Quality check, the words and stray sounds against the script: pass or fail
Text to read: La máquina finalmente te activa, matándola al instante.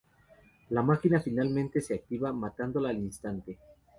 fail